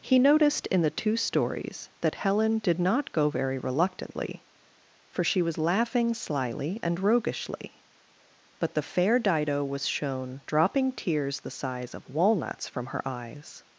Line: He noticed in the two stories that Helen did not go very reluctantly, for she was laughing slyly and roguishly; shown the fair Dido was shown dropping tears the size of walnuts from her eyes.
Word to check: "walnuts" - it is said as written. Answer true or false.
true